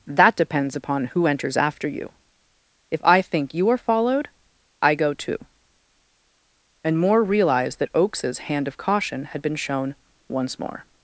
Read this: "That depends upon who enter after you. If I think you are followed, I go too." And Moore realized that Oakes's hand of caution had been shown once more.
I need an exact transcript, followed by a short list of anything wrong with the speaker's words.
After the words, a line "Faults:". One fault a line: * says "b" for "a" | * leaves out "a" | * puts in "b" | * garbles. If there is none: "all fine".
"That depends upon who enters after you. If I think you are followed, I go too." And Moore realized that Oakes's hand of caution had been shown once more.
Faults:
* says "enters" for "enter"